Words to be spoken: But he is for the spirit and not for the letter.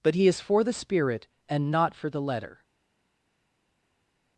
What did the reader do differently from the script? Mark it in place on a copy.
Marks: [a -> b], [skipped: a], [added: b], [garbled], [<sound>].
But he is for the spirit and not for the letter.